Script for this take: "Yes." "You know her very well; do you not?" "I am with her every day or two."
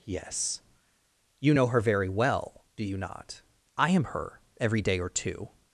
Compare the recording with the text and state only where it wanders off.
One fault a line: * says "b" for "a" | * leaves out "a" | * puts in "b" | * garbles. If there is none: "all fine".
* leaves out "with"